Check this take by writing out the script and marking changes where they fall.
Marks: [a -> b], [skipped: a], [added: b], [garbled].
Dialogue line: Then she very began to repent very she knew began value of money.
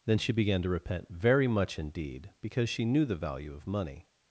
Then she [skipped: very] began to repent very [added: much indeed because] she knew [began -> the] value of money.